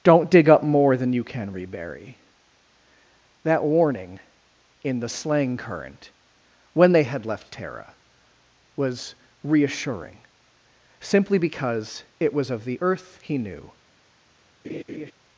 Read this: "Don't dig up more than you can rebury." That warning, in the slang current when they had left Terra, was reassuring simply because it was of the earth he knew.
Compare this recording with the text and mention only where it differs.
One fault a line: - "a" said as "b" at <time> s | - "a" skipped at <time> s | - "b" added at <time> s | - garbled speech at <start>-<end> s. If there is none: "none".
none